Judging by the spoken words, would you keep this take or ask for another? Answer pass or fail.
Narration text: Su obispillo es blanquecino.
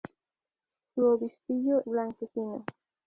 fail